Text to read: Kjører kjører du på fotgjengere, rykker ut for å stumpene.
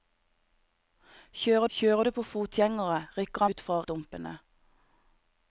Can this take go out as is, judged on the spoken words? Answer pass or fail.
pass